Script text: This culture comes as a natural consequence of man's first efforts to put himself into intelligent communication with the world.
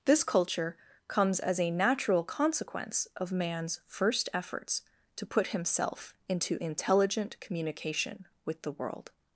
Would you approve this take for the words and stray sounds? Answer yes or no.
yes